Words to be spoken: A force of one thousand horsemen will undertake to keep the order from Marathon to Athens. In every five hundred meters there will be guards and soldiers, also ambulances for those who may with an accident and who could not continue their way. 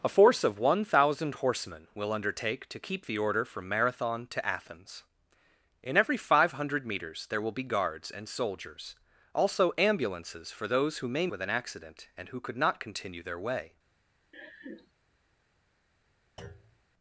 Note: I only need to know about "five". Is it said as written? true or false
true